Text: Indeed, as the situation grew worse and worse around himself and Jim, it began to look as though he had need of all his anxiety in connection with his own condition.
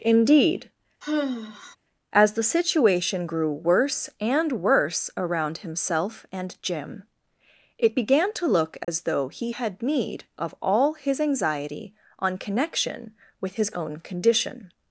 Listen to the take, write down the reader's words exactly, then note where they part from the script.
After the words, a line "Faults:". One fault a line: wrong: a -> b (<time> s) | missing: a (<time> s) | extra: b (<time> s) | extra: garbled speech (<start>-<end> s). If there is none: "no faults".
Indeed, as the situation grew worse and worse around himself and Jim, it began to look as though he had need of all his anxiety on connection with his own condition.
Faults:
wrong: in -> on (12.2 s)